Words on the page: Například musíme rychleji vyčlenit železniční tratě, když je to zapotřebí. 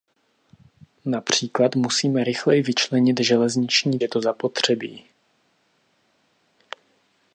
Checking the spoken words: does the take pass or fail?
fail